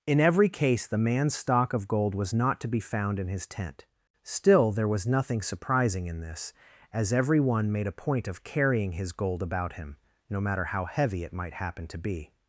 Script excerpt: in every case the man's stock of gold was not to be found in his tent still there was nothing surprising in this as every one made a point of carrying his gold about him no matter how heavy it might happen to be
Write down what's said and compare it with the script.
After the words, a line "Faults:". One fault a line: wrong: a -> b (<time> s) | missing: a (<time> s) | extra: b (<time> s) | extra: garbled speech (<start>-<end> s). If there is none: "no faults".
in every case the man's stock of gold was not to be found in his tent still there was nothing surprising in this as every one made a point of carrying his gold about him no matter how heavy it might happen to be
Faults:
no faults